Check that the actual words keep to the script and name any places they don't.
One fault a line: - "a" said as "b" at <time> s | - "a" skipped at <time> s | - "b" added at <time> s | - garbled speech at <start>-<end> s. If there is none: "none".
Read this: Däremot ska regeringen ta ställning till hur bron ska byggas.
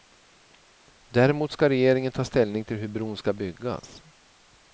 none